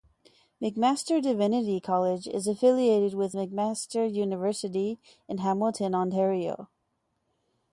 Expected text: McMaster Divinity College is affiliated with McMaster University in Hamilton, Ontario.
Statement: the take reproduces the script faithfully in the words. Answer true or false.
true